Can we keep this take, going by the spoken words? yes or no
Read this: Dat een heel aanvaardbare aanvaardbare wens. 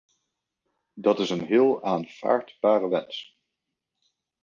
no